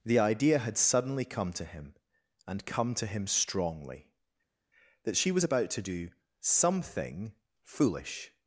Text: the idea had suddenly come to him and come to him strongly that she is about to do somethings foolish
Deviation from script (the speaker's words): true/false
true